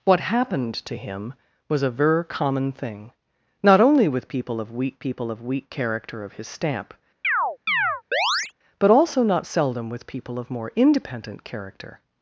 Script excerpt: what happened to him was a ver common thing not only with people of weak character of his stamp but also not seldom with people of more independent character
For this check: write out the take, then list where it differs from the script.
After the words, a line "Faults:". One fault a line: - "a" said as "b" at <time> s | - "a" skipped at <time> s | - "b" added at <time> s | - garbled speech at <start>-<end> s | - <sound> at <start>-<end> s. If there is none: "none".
what happened to him was a ver common thing not only with people of weak people of weak character of his stamp but also not seldom with people of more independent character
Faults:
- "people of weak" added at 5.0 s
- chirp at 7.2-8.5 s